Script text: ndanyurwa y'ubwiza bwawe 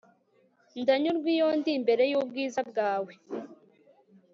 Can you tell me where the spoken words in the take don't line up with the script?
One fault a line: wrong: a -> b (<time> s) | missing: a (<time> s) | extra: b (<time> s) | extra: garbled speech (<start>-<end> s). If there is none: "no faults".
extra: iyo ndi imbere (1.4 s)